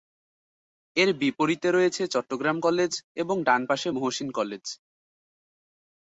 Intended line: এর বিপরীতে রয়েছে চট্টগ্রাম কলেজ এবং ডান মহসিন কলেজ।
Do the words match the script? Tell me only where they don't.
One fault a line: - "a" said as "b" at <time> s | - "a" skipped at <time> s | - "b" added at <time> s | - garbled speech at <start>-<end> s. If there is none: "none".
- "পাশে" added at 3.7 s